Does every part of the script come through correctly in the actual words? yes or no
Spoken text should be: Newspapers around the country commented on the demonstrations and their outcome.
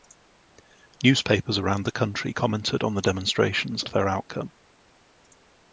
no